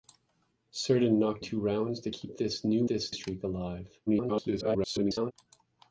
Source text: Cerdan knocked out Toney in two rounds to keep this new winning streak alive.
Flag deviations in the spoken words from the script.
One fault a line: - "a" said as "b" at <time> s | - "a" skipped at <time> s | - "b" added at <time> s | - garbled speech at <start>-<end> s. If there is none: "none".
- "out Toney in" skipped at 1.4 s
- "winning" said as "this" at 2.9 s
- garbled speech at 4.1-5.3 s